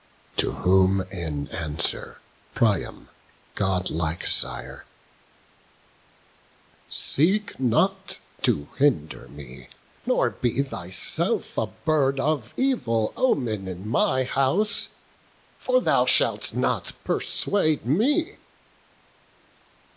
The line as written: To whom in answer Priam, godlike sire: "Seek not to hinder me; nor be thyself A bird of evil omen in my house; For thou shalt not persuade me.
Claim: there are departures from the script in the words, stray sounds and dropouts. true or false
false